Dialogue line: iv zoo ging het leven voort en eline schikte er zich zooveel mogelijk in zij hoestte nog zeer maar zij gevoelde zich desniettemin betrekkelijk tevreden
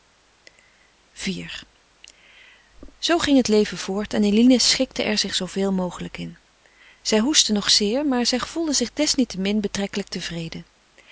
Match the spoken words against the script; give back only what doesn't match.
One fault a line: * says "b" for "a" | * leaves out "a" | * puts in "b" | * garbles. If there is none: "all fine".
all fine